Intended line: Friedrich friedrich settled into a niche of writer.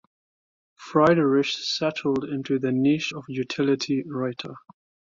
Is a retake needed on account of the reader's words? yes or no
yes